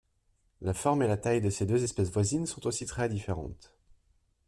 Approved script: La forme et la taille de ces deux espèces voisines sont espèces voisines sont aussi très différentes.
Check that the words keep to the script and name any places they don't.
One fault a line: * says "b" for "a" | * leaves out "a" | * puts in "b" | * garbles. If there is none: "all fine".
* leaves out "espèces voisines sont"